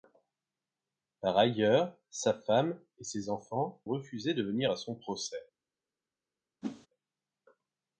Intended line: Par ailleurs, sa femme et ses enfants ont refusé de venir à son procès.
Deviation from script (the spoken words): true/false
true